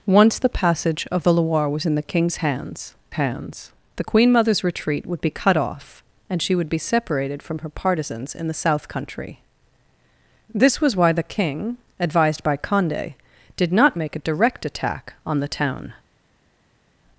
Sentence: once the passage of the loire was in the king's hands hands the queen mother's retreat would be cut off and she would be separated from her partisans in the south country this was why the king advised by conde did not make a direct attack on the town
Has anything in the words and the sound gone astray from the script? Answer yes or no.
no